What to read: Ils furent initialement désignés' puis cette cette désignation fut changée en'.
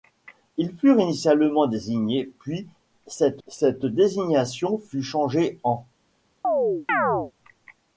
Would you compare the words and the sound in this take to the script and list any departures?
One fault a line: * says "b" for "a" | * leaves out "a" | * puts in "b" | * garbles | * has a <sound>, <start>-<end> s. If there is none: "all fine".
* has a chirp, 6.4-7.3 s